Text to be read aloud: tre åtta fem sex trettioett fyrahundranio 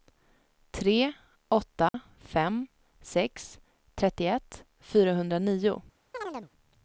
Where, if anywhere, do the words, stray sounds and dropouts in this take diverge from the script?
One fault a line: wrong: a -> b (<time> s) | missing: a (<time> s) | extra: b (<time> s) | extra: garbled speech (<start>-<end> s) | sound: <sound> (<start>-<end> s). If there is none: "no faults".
sound: dropout (1.9-1.9 s)
sound: chirp (6.1-6.5 s)